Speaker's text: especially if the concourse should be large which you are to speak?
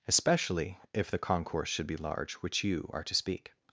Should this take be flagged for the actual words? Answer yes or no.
no